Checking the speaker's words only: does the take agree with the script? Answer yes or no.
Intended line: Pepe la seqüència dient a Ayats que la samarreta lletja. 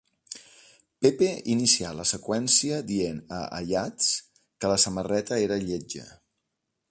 no